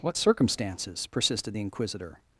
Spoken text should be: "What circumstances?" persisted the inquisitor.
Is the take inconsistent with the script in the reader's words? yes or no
no